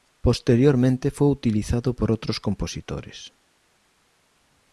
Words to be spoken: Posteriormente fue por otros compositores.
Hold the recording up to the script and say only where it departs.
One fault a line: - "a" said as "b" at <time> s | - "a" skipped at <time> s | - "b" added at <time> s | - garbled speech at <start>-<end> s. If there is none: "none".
- "utilizado" added at 1.3 s